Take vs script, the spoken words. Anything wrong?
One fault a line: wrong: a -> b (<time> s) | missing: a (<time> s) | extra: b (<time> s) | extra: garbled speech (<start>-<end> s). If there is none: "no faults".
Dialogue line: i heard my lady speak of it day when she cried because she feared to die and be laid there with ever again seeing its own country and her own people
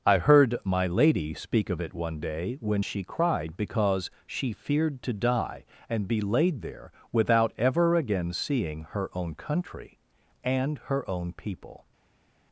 extra: one (1.9 s)
wrong: with -> without (7.1 s)
wrong: its -> her (8.9 s)